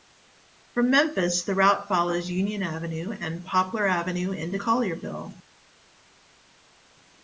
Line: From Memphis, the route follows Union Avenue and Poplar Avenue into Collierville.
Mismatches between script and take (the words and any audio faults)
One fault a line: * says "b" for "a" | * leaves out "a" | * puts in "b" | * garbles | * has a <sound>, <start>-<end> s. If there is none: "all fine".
all fine